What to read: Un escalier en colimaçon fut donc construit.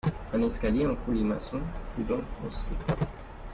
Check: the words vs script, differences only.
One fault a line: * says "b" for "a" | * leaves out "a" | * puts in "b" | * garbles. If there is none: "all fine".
all fine